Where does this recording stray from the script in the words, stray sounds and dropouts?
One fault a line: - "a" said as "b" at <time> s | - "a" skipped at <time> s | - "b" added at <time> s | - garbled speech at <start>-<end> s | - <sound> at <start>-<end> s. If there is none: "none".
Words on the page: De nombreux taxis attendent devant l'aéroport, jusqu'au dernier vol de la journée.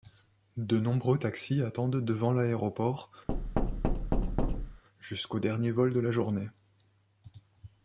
- thud at 3.3-4.8 s